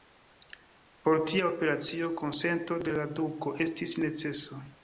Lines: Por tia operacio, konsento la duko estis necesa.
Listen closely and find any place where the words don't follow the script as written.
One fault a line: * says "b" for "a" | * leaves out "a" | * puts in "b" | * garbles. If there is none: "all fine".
* puts in "de"